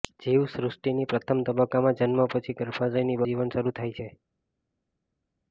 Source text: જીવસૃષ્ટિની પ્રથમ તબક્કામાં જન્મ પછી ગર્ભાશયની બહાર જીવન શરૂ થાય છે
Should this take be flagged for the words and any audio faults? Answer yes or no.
yes